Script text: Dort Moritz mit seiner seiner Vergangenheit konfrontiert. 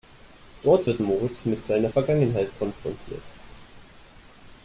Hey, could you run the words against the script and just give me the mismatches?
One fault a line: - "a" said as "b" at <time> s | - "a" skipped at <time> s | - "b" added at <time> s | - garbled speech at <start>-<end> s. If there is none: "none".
- "wird" added at 0.9 s
- "seiner" skipped at 1.9 s